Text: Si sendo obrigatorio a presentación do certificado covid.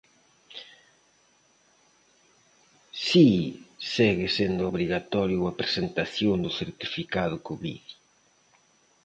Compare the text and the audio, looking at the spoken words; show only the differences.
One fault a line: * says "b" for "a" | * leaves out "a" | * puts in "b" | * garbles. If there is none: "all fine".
* puts in "segue"